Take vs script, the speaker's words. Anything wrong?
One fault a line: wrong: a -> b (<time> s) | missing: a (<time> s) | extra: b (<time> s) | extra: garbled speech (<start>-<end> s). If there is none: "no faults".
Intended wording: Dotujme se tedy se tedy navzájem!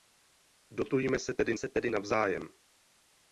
no faults